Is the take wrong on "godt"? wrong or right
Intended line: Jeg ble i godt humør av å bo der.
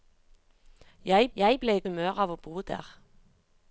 wrong